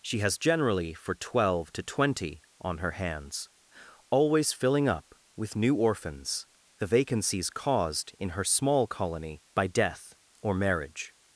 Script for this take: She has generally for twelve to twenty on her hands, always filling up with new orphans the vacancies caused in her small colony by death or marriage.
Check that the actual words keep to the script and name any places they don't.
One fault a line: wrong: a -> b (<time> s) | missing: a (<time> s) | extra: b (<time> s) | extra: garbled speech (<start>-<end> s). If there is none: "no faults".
no faults